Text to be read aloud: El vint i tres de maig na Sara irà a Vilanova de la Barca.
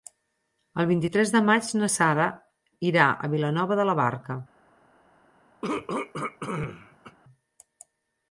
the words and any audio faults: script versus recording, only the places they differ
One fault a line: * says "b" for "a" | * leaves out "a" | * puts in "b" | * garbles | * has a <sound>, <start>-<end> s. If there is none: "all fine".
* has a throat clearing, 5.6-7.2 s